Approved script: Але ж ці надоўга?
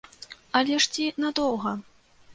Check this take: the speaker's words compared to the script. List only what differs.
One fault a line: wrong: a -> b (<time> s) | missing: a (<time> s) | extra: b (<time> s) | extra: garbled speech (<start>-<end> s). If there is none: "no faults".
no faults